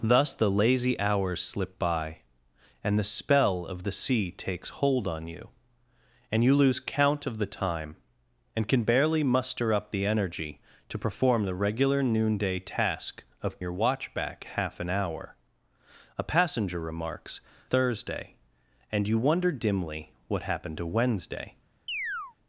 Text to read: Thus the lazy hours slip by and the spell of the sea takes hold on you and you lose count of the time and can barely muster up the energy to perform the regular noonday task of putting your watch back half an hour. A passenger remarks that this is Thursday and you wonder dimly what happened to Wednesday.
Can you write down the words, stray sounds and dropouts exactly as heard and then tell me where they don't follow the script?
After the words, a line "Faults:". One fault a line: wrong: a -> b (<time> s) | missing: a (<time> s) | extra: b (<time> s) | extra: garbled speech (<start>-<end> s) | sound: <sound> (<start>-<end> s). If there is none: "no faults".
Thus the lazy hours slip by and the spell of the sea takes hold on you and you lose count of the time and can barely muster up the energy to perform the regular noonday task of your watch back half an hour. A passenger remarks Thursday and you wonder dimly what happened to Wednesday.
Faults:
missing: putting (13.6 s)
missing: that this is (17.4 s)
sound: chirp (21.9-22.4 s)